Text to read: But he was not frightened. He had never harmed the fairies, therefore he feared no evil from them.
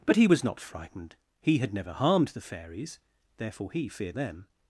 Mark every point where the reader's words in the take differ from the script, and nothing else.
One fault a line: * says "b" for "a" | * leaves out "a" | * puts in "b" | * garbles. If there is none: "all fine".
* leaves out "no evil from"